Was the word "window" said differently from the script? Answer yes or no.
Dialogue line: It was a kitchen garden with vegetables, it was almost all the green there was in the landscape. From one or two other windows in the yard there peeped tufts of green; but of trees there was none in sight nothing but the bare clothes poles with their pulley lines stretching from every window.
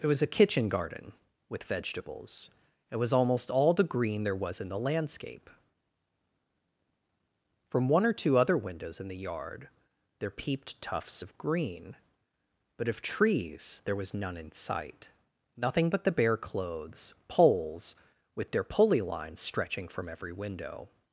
no